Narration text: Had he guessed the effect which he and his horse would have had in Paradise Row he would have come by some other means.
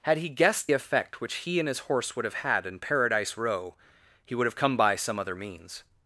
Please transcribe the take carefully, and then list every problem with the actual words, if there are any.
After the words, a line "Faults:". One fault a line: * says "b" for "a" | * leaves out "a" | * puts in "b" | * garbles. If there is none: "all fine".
Had he guessed effect which he and his horse would have had in Paradise Row he would have come by some other means.
Faults:
* leaves out "the"